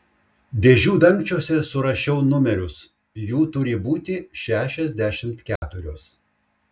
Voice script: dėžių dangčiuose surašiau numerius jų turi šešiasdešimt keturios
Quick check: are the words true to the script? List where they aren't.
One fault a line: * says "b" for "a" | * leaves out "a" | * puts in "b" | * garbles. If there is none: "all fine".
* puts in "būti"